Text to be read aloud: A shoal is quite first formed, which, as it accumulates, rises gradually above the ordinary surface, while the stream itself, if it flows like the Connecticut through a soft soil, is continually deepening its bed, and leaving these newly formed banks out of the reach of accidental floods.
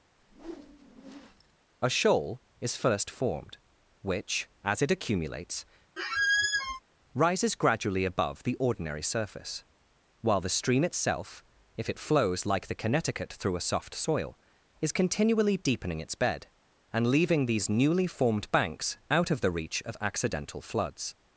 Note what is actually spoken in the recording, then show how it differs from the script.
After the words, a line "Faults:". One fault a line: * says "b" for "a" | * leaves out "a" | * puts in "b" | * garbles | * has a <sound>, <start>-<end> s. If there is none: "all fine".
A shoal is first formed, which, as it accumulates, rises gradually above the ordinary surface, while the stream itself, if it flows like the Connecticut through a soft soil, is continually deepening its bed, and leaving these newly formed banks out of the reach of accidental floods.
Faults:
* has a whoosh, 0.2-1.6 s
* leaves out "quite"
* has a squeak, 6.0-6.8 s